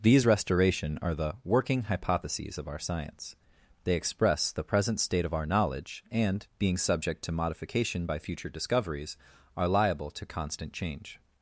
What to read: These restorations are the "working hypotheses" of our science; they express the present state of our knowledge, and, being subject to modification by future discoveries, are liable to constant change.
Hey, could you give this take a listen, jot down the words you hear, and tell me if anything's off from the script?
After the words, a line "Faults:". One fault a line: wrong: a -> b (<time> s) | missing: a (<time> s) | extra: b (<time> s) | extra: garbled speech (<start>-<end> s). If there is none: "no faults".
These restoration are the "working hypotheses" of our science; they express the present state of our knowledge, and, being subject to modification by future discoveries, are liable to constant change.
Faults:
wrong: restorations -> restoration (0.2 s)